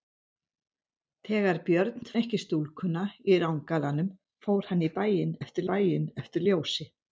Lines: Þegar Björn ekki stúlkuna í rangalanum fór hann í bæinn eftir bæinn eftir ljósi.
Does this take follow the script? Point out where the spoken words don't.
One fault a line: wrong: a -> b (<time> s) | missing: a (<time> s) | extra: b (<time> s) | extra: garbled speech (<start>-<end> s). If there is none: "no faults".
no faults